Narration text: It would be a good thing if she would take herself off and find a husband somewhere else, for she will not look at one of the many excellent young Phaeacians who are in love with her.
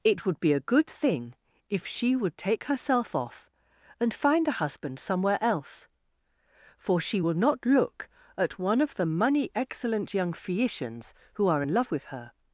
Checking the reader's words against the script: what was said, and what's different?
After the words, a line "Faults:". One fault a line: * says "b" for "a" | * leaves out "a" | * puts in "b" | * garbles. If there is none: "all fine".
It would be a good thing if she would take herself off and find a husband somewhere else, for she will not look at one of the money excellent young Phaeacians who are in love with her.
Faults:
* says "money" for "many"